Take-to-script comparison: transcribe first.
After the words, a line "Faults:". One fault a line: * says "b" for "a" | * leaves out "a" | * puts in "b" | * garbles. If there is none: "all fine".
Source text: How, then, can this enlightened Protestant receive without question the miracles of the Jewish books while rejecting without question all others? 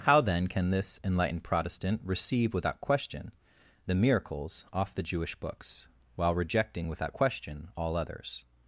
How, then, can this enlightened Protestant receive without question the miracles off the Jewish books while rejecting without question all others?
Faults:
* says "off" for "of"